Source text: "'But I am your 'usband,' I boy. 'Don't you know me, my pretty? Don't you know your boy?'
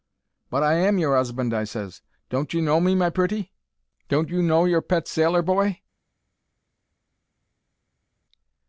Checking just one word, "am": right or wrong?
right